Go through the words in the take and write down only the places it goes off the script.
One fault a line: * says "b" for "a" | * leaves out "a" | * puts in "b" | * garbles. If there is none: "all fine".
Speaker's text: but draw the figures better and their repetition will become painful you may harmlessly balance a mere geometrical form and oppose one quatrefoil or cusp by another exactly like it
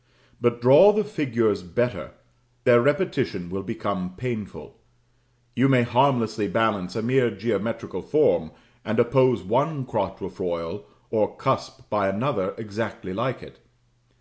* leaves out "and"